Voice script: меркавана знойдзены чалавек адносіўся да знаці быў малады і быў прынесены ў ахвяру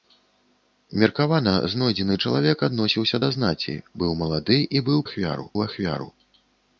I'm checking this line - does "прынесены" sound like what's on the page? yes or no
no